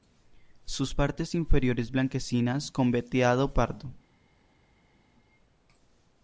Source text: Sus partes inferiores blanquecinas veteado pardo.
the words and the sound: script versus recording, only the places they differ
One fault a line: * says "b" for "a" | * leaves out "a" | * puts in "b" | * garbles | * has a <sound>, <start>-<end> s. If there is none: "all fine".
* puts in "con"